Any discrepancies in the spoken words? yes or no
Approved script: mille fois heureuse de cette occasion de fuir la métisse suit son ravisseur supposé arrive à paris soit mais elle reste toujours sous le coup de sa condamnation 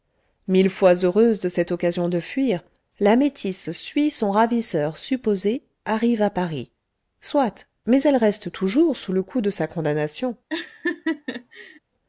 no